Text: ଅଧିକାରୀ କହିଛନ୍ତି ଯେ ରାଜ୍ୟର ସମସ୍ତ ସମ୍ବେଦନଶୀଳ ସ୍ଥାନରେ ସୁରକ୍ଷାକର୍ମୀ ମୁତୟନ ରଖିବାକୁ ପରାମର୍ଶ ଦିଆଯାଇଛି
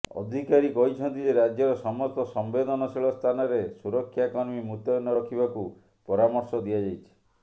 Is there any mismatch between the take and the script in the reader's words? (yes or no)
no